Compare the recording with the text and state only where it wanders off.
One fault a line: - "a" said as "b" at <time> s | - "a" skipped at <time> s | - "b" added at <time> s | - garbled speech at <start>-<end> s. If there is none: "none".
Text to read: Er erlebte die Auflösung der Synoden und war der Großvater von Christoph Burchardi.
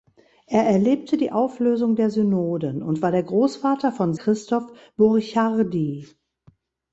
none